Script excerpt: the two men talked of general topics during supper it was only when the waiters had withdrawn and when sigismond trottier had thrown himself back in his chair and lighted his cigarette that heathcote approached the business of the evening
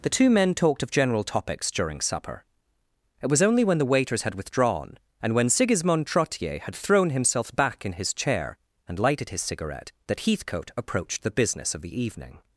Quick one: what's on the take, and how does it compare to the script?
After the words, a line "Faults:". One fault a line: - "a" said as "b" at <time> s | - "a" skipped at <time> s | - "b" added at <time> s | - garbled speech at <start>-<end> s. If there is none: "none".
the two men talked of general topics during supper it was only when the waiters had withdrawn and when sigismond trottier had thrown himself back in his chair and lighted his cigarette that heathcote approached the business of the evening
Faults:
none